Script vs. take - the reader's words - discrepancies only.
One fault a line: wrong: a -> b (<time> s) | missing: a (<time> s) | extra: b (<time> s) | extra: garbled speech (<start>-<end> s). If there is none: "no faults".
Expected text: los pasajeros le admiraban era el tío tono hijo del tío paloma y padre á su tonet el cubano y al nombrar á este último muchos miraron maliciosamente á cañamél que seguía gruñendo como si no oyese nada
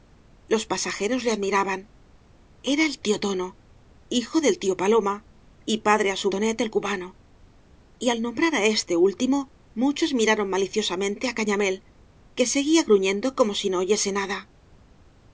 no faults